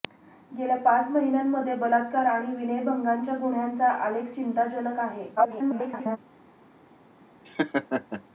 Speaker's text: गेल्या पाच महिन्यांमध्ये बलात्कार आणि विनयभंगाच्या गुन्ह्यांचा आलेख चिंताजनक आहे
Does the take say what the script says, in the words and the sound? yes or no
no